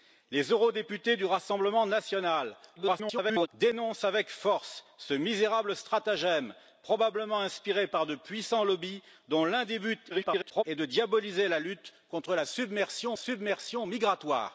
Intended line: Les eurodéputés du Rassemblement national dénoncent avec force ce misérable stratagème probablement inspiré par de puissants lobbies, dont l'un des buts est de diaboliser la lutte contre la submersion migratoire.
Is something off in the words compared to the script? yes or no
yes